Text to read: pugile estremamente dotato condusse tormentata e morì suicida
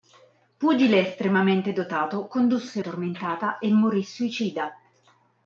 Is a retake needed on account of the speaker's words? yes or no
no